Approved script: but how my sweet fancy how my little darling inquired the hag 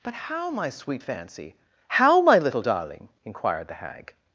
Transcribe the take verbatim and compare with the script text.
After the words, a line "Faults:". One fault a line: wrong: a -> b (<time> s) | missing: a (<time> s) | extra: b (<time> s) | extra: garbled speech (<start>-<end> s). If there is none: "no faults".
but how my sweet fancy how my little darling inquired the hag
Faults:
no faults